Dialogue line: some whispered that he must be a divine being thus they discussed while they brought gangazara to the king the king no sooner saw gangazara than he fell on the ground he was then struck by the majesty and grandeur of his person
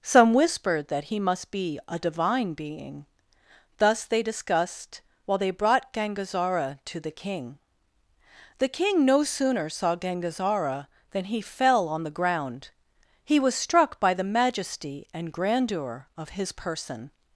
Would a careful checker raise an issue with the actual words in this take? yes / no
yes